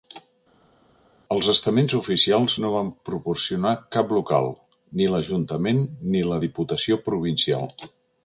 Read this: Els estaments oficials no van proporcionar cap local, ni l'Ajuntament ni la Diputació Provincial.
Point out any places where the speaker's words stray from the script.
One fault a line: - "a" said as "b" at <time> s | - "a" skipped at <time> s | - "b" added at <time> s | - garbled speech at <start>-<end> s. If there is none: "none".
none